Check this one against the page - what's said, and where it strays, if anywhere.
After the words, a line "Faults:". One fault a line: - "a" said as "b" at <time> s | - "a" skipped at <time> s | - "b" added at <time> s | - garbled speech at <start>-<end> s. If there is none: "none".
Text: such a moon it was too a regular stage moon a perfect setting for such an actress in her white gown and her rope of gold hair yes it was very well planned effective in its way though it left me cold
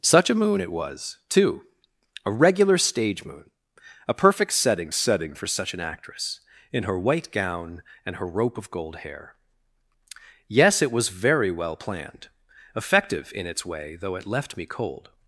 such a moon it was too a regular stage moon a perfect setting setting for such an actress in her white gown and her rope of gold hair yes it was very well planned effective in its way though it left me cold
Faults:
- "setting" added at 4.9 s